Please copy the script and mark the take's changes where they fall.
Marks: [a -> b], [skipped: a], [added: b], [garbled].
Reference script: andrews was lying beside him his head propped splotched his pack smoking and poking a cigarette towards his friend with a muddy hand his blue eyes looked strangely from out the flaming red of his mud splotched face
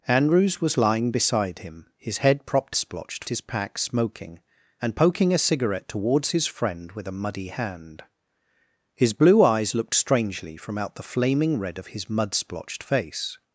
andrews was lying beside him his head propped splotched his pack smoking and poking a cigarette towards his friend with a muddy hand his blue eyes looked strangely from out the flaming red of his mud splotched face